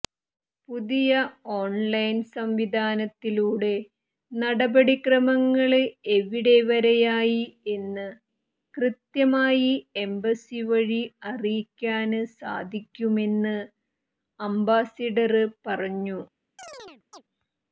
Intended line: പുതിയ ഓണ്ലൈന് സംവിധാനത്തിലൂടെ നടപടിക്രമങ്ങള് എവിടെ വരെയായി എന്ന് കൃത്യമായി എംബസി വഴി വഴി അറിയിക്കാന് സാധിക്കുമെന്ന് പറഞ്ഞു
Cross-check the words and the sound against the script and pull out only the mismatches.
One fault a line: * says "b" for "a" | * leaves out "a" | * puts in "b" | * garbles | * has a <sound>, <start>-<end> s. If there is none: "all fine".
* leaves out "വഴി"
* puts in "അംബാസഡര്"
* has a chirp, 16.6-17.2 s